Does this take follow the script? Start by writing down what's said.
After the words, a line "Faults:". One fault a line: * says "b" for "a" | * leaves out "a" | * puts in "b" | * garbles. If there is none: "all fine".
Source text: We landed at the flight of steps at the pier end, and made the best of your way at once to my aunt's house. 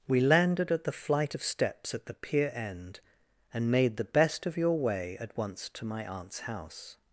We landed at the flight of steps at the pier end, and made the best of your way at once to my aunt's house.
Faults:
all fine